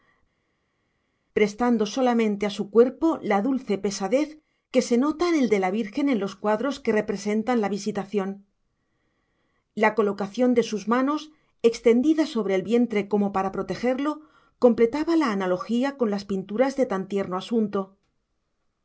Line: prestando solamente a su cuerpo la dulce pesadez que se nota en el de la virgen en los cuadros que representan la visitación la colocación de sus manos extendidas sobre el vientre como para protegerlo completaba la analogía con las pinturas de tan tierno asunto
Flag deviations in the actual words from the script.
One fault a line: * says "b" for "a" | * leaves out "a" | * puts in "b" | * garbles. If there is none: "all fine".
all fine